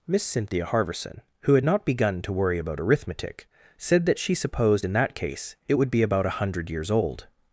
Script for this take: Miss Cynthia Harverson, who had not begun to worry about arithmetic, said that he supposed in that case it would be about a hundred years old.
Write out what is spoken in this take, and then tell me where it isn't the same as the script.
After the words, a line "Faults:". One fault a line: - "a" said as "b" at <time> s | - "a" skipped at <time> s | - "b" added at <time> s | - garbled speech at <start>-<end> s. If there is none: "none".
Miss Cynthia Harverson, who had not begun to worry about arithmetic, said that she supposed in that case it would be about a hundred years old.
Faults:
- "he" said as "she" at 4.2 s